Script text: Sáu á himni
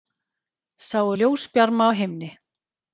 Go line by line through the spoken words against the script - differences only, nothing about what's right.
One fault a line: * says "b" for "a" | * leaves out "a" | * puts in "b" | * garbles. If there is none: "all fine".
* puts in "ljósbjarma"